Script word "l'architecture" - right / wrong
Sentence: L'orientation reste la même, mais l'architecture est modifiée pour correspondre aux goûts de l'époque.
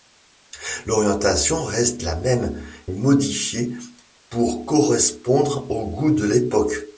wrong